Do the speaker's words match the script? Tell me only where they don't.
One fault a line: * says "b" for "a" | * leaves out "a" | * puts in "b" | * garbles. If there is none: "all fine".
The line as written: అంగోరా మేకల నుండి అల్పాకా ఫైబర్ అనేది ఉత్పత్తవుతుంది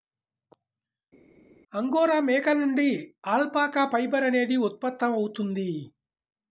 all fine